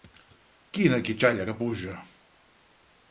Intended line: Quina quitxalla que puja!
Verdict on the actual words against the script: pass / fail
pass